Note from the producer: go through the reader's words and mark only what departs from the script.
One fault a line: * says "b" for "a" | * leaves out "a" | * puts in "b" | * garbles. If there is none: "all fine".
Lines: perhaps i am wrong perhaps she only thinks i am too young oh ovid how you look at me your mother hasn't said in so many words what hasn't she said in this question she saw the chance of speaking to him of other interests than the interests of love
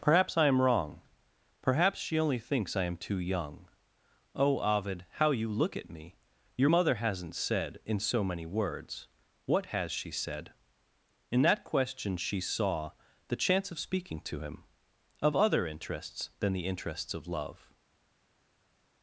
* says "has" for "hasn't"
* says "that" for "this"